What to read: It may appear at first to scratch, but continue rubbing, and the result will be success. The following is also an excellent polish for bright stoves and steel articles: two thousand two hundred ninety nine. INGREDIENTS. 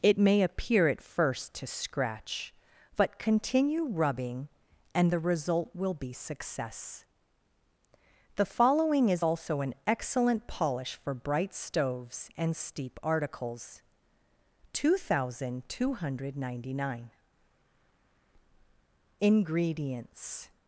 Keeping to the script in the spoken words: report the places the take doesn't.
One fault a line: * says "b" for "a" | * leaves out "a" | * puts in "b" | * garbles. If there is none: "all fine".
* says "steep" for "steel"